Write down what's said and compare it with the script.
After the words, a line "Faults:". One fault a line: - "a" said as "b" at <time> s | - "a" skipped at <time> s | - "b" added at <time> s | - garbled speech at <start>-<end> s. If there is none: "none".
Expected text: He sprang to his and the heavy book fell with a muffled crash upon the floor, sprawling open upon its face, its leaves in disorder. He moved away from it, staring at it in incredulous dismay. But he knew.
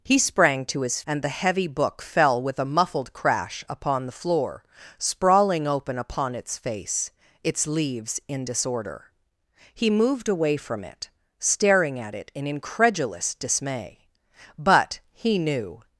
He sprang to his and the heavy book fell with a muffled crash upon the floor, sprawling open upon its face, its leaves in disorder. He moved away from it, staring at it in incredulous dismay. But he knew.
Faults:
none